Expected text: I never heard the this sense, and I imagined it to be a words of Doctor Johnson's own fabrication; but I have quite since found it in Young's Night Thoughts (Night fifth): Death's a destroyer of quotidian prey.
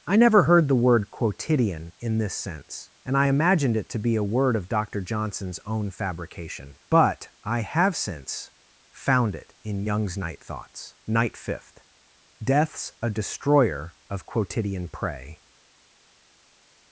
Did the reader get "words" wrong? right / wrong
wrong